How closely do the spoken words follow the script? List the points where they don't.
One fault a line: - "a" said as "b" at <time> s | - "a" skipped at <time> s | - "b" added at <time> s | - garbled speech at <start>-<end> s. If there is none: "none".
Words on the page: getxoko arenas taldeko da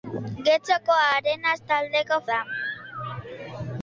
none